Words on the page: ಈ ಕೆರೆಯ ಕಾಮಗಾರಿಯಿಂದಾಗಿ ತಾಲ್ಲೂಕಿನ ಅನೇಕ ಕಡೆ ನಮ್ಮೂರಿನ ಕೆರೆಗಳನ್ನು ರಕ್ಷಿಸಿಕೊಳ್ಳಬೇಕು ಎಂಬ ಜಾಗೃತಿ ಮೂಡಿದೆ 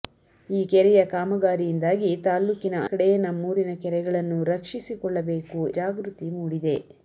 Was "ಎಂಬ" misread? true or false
true